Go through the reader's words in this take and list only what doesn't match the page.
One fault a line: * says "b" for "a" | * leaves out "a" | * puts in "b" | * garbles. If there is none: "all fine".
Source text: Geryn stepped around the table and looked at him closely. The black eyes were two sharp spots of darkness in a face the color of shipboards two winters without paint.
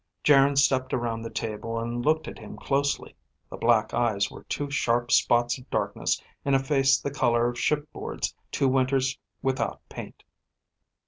all fine